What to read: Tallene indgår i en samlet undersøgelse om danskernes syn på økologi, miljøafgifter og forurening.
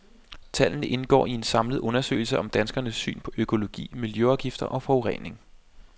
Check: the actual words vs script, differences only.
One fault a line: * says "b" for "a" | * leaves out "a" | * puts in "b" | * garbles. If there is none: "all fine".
all fine